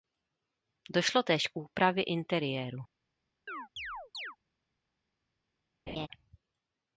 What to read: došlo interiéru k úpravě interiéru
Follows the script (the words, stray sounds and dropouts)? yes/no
no